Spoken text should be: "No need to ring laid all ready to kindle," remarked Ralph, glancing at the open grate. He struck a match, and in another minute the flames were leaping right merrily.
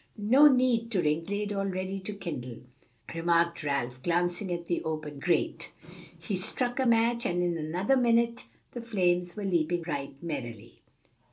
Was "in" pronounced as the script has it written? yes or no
yes